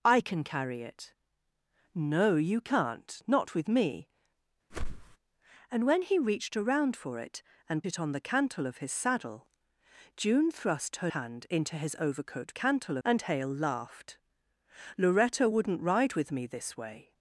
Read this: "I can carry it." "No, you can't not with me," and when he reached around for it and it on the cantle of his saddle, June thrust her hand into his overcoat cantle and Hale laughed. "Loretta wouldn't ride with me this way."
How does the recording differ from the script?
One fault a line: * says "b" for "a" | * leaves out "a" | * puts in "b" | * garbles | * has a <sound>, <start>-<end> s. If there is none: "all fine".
* has a whoosh, 4.7-5.2 s